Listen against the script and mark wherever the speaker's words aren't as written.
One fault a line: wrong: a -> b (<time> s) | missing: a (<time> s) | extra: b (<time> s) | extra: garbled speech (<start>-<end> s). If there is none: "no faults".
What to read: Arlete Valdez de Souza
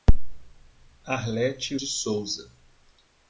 missing: Valdez (1.8 s)